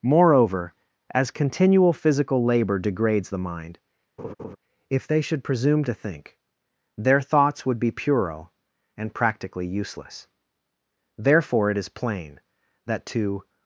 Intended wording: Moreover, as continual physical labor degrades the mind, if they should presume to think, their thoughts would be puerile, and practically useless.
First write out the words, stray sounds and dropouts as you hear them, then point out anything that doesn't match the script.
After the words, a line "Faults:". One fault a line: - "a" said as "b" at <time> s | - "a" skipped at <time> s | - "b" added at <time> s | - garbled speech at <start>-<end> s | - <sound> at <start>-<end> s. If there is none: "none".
Moreover, as continual physical labor degrades the mind, if they should presume to think, their thoughts would be puerile, and practically useless. Therefore, it is plain, that to
Faults:
- laugh at 4.2-4.6 s
- "Therefore it is plain that to" added at 11.2 s